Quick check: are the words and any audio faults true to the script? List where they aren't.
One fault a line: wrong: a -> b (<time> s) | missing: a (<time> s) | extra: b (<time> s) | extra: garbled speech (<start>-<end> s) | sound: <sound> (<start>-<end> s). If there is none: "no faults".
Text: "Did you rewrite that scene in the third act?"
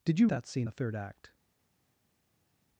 missing: rewrite (0.3 s)
missing: in (0.7 s)